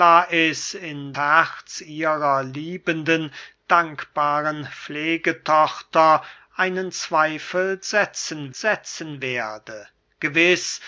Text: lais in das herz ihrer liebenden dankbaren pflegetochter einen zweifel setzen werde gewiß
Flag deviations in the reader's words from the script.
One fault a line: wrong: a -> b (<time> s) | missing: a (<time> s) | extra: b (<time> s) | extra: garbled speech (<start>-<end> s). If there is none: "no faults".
missing: das (1.1 s)
extra: setzen (8.5 s)